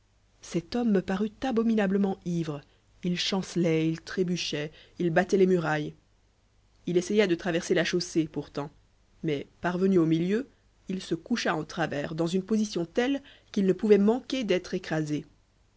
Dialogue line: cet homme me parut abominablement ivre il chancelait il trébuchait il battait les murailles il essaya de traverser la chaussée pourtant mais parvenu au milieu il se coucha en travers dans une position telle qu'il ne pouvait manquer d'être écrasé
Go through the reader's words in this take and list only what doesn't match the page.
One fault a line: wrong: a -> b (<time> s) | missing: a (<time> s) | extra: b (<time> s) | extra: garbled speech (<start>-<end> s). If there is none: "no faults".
no faults